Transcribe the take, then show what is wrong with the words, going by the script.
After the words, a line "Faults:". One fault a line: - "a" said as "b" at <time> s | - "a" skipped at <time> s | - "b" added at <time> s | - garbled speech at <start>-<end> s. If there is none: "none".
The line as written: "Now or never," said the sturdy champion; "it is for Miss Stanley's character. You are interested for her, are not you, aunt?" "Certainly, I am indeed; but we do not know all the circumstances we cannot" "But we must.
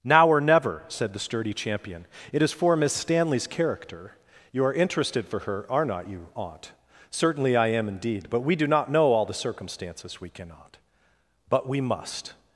"Now or never," said the sturdy champion; "it is for Miss Stanley's character. You are interested for her, are not you, aunt?" "Certainly, I am indeed; but we do not know all the circumstances we cannot" "But we must.
Faults:
none